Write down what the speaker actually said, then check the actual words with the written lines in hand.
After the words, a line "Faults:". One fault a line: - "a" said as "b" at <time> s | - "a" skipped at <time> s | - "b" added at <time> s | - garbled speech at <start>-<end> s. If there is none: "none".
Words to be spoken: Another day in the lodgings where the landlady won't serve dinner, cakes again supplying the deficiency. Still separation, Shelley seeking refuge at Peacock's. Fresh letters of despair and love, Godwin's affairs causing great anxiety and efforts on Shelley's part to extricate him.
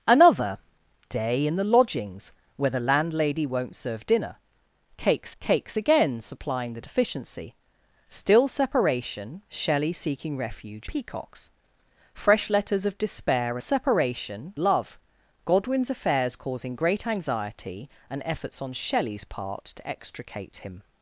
Another day in the lodgings where the landlady won't serve dinner, cakes cakes again supplying the deficiency. Still separation, Shelley seeking refuge Peacock's. Fresh letters of despair separation love, Godwin's affairs causing great anxiety and efforts on Shelley's part to extricate him.
Faults:
- "cakes" added at 5.4 s
- "at" skipped at 10.9 s
- "and" said as "separation" at 13.6 s